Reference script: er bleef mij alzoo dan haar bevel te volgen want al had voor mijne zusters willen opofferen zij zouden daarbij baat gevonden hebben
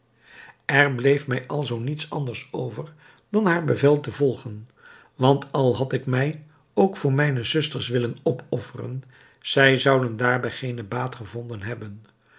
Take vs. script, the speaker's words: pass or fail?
fail